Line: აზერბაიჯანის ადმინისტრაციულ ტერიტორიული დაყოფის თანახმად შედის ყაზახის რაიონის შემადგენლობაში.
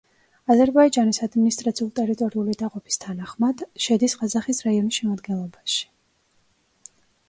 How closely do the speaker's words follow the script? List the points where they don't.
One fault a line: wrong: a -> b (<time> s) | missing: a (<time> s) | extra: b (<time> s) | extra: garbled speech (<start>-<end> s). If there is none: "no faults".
no faults